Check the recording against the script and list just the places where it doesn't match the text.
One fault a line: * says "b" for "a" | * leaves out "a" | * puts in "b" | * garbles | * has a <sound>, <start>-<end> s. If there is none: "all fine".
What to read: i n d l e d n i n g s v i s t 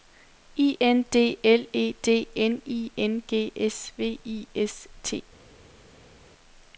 all fine